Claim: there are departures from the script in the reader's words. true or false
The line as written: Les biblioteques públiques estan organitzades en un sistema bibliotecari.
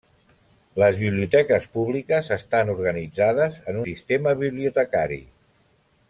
true